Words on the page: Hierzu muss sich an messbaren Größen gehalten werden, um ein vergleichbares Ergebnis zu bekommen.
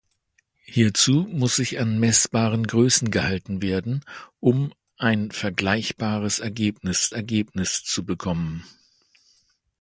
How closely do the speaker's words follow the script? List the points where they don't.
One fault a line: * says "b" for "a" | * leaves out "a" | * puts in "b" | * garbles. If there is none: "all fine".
* puts in "Ergebnis"